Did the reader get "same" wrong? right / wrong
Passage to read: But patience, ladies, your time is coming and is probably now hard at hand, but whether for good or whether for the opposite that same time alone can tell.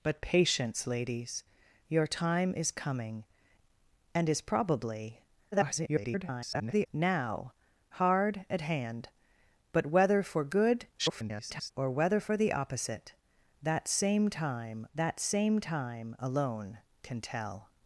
right